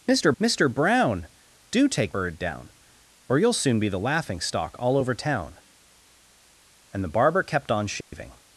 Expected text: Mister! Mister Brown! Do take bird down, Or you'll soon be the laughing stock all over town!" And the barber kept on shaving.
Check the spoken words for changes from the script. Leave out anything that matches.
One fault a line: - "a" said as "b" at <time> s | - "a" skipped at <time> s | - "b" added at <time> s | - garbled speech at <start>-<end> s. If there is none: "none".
none